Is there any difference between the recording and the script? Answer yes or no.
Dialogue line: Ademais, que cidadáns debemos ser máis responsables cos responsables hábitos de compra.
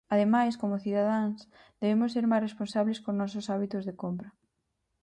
yes